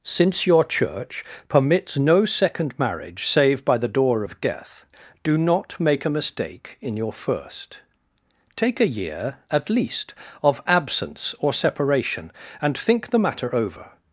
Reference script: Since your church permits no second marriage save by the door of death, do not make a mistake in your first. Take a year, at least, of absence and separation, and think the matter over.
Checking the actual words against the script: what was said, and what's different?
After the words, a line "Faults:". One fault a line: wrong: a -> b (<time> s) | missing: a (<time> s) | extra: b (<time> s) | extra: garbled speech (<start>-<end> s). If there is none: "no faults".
Since your church permits no second marriage save by the door of death, do not make a mistake in your first. Take a year, at least, of absence or separation, and think the matter over.
Faults:
wrong: and -> or (11.4 s)